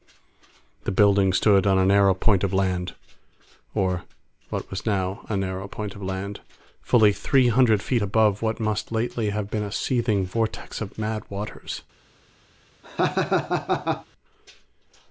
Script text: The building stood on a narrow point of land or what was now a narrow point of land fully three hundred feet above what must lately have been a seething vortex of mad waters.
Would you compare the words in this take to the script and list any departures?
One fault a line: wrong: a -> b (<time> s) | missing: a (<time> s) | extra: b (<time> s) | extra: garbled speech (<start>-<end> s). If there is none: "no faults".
no faults